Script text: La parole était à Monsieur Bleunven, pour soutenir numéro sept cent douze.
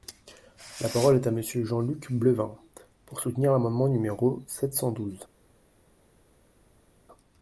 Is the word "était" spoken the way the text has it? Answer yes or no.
no